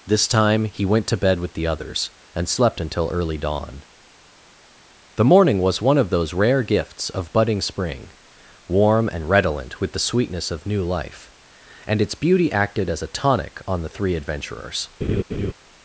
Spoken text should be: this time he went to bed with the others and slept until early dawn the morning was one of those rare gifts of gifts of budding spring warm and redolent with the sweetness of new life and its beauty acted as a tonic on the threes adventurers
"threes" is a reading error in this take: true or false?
true